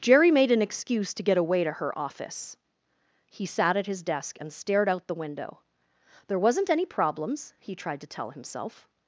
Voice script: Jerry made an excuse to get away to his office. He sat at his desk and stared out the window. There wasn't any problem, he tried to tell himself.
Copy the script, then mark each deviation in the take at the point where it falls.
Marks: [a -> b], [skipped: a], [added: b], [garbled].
Jerry made an excuse to get away to [his -> her] office. He sat at his desk and stared out the window. There wasn't any [problem, -> problems] he tried to tell himself.